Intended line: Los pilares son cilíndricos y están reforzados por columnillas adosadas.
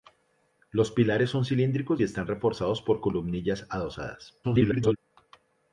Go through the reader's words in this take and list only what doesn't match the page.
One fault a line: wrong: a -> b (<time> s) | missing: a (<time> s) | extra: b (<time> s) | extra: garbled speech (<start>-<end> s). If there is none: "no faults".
extra: garbled speech (4.4-5.0 s)